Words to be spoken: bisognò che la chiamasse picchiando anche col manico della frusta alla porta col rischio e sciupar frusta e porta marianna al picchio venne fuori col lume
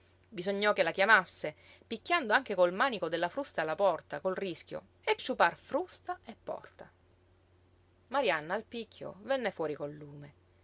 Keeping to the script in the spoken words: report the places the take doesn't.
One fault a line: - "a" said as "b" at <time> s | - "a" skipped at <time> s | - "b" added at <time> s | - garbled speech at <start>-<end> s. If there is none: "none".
none